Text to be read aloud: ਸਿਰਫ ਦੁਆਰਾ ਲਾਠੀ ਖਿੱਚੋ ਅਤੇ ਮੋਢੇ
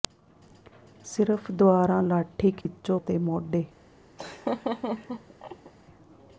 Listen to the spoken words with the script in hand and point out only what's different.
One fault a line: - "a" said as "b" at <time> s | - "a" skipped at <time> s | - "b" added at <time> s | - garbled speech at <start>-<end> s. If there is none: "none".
none